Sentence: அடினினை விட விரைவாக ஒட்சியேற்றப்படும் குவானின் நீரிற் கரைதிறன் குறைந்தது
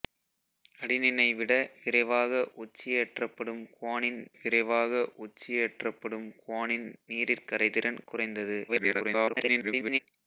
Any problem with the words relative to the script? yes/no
yes